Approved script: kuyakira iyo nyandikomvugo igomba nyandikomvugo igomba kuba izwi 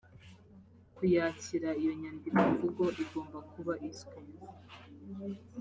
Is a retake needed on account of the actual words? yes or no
yes